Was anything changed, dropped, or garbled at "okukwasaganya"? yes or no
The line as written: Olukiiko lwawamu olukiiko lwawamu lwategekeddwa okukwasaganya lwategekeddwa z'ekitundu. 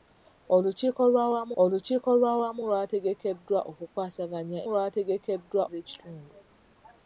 no